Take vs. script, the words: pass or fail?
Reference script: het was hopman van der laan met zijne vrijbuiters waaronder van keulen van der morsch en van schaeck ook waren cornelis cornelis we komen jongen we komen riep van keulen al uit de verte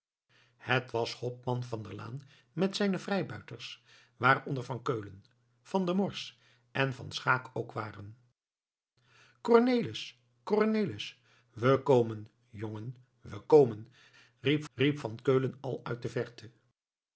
fail